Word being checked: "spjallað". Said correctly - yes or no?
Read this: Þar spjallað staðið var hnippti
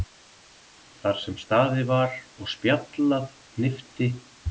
no